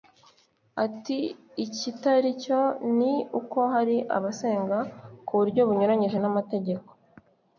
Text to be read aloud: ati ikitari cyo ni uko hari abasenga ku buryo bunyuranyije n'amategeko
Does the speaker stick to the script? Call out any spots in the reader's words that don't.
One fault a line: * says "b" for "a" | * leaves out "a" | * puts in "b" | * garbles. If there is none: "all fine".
all fine